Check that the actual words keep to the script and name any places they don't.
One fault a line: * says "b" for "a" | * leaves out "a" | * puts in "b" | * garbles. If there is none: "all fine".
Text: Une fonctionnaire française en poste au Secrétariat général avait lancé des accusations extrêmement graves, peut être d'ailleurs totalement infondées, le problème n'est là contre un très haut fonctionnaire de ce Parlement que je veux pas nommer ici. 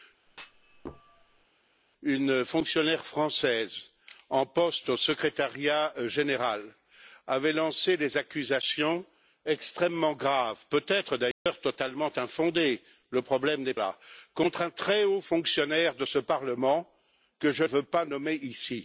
all fine